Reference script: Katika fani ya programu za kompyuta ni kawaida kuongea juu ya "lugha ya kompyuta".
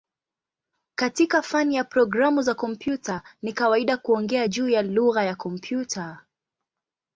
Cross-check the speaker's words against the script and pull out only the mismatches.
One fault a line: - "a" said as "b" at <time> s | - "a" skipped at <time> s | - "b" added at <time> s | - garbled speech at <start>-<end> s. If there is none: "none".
none